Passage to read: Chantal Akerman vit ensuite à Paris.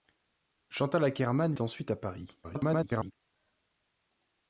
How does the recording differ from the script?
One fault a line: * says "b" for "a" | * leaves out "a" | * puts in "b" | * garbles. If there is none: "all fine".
* leaves out "vit"
* garbles